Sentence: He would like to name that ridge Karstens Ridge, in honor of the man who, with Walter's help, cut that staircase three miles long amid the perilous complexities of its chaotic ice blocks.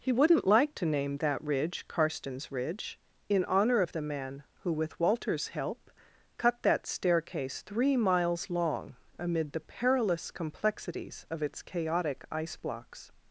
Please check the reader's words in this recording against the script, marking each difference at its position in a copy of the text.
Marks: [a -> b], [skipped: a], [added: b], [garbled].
He [would -> wouldn't] like to name that ridge Karstens Ridge, in honor of the man who, with Walter's help, cut that staircase three miles long amid the perilous complexities of its chaotic ice blocks.